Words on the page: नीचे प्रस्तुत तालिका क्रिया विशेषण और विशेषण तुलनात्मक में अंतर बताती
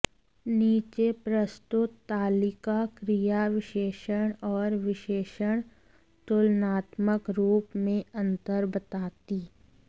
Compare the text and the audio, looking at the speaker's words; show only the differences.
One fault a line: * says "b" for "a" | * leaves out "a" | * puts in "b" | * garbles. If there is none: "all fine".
* puts in "रूप"